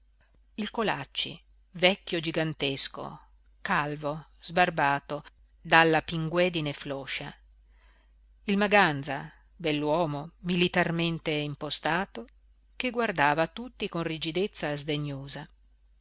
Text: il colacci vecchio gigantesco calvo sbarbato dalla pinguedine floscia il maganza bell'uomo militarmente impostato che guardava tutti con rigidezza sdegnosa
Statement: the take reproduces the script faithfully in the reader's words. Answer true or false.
true